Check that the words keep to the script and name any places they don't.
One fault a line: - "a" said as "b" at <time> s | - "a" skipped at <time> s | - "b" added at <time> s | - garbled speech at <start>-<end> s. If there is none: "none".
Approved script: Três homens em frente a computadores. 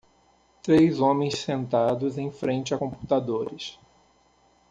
- "sentados" added at 1.4 s